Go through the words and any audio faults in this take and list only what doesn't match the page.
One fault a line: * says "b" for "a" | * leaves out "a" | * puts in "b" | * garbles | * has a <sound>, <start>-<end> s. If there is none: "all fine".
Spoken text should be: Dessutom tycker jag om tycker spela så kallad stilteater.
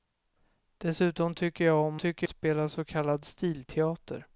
all fine